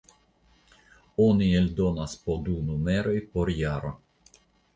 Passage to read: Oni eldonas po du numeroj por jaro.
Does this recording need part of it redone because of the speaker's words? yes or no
no